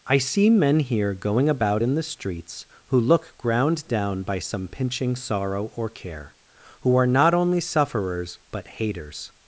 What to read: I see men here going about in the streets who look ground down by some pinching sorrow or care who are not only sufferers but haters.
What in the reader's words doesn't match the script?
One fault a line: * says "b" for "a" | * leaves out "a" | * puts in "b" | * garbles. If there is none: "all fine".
all fine